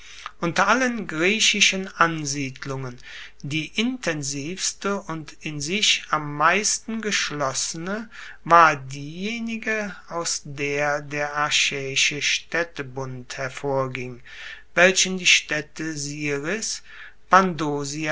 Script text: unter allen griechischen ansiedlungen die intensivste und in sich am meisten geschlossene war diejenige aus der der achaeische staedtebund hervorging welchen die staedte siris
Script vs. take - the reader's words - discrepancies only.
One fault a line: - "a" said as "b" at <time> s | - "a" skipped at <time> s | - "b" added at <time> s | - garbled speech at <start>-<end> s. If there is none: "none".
none